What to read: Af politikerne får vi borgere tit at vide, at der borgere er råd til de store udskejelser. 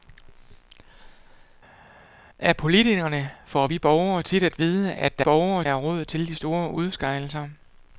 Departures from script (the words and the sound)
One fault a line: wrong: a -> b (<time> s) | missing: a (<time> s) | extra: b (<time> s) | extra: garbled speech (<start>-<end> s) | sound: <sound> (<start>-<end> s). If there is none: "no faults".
no faults